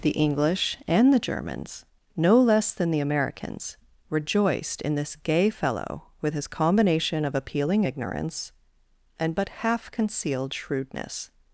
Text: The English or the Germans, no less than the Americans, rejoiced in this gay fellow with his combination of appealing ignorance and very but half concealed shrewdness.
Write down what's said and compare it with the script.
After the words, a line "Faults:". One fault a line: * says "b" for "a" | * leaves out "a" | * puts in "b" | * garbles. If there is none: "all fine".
The English and the Germans, no less than the Americans, rejoiced in this gay fellow with his combination of appealing ignorance and but half concealed shrewdness.
Faults:
* says "and" for "or"
* leaves out "very"